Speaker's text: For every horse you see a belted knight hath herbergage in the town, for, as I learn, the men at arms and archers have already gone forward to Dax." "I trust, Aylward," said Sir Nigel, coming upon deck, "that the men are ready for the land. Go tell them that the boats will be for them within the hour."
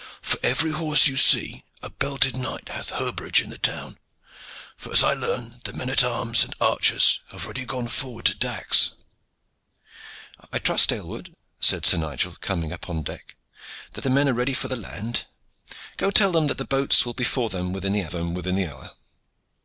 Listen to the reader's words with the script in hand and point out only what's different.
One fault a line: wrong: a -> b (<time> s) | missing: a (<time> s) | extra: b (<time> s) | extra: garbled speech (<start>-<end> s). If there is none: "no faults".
extra: them within the (18.1 s)